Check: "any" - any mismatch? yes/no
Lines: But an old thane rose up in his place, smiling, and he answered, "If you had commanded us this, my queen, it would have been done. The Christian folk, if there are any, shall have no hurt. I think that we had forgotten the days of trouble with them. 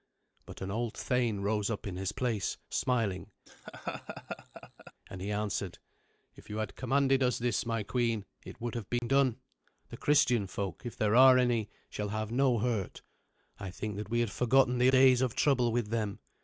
no